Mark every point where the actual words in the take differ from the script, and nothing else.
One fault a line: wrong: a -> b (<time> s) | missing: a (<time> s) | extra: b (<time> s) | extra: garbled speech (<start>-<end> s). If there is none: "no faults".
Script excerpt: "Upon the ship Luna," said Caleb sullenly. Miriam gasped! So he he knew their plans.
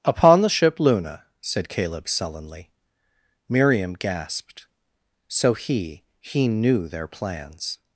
no faults